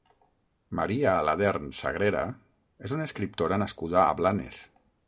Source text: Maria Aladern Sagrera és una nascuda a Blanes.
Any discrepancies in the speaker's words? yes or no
yes